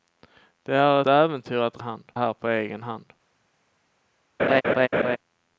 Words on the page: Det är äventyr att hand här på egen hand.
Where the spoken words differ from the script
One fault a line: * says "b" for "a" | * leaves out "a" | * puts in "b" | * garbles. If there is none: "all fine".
all fine